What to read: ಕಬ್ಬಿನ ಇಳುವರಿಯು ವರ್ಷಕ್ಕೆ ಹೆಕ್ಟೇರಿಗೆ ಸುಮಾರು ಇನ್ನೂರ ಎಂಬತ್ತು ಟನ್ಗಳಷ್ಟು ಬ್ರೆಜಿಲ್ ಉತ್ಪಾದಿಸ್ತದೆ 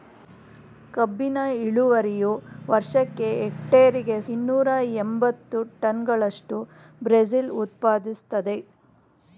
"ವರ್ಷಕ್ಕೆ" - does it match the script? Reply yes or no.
yes